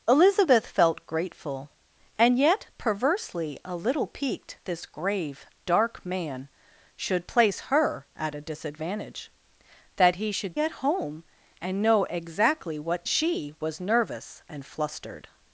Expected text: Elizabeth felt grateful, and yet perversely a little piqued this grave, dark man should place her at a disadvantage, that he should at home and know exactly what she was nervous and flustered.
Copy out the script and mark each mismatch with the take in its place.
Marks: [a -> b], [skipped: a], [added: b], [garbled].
Elizabeth felt grateful, and yet perversely a little piqued this grave, dark man should place her at a disadvantage, that he should at home and know exactly what she was nervous and flustered.